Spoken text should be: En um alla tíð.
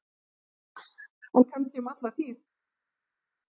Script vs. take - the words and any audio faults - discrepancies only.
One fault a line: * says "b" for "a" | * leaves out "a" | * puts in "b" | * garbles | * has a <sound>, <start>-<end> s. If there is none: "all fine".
* puts in "kannski"